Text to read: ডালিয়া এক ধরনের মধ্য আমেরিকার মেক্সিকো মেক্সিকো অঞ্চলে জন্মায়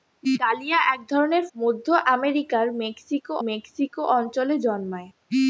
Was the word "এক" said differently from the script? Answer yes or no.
no